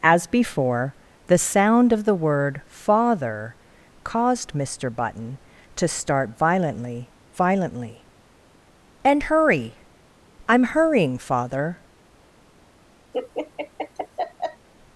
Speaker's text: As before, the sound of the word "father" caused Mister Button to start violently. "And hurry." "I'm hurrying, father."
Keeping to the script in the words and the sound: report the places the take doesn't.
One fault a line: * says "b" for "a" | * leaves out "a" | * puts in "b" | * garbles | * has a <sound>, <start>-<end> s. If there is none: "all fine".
* puts in "violently"
* has a laugh, 13.1-14.7 s